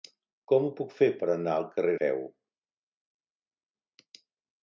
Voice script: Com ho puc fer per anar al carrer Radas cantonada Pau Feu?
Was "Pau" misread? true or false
true